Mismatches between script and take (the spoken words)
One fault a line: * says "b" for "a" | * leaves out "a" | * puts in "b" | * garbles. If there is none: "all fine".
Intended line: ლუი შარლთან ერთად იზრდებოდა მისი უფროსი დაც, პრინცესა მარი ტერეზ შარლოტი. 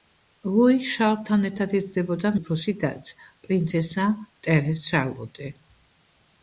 * leaves out "მისი"
* leaves out "მარი"